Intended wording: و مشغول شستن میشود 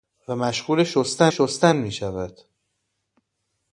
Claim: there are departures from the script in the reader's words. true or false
true